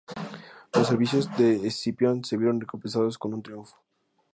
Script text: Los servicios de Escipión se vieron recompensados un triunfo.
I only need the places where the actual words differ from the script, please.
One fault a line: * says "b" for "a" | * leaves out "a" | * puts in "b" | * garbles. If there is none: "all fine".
* puts in "con"